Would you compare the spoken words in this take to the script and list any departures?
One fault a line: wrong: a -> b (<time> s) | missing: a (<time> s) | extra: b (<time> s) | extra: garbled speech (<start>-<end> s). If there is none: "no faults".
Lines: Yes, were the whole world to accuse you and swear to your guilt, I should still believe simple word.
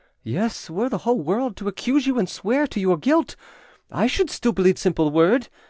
no faults